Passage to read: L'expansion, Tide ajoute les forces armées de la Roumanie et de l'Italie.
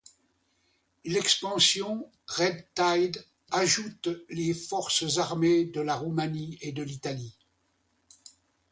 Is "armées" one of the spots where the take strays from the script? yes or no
no